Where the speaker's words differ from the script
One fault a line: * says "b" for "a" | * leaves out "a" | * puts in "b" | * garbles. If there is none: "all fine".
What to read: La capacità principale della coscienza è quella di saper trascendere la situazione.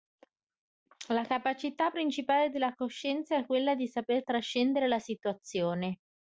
all fine